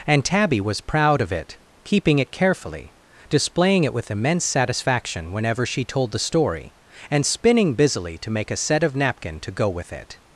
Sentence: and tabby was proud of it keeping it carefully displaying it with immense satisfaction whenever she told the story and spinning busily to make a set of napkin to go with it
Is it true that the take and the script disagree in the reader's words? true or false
false